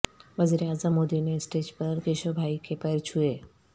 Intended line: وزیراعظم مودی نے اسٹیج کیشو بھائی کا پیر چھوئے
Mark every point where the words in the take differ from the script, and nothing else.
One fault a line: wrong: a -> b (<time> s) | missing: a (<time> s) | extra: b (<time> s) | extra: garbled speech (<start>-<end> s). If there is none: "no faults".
extra: پر (1.8 s)
wrong: کا -> کے (2.6 s)